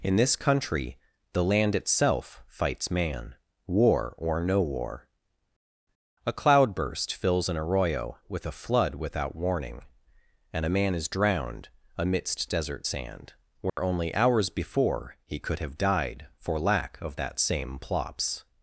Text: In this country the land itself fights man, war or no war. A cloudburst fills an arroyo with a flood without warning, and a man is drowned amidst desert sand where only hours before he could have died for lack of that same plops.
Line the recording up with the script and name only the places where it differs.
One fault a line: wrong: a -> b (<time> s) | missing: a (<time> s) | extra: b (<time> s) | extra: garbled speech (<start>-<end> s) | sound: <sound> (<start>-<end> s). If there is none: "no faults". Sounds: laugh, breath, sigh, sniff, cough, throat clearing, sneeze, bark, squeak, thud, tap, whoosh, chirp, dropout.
sound: dropout (13.7-13.8 s)